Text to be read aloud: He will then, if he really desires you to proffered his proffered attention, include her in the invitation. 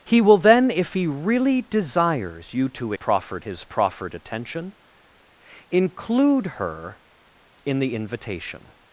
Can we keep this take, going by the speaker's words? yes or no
yes